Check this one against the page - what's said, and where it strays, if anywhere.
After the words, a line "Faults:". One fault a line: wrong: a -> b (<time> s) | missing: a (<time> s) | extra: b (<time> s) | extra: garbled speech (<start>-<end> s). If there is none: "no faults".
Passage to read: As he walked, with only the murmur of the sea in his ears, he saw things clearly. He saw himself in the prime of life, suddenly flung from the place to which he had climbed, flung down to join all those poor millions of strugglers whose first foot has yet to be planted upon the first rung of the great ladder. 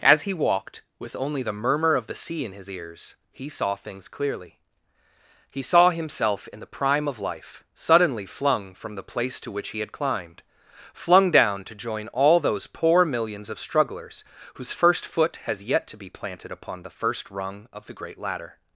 As he walked, with only the murmur of the sea in his ears, he saw things clearly. He saw himself in the prime of life, suddenly flung from the place to which he had climbed, flung down to join all those poor millions of strugglers whose first foot has yet to be planted upon the first rung of the great ladder.
Faults:
no faults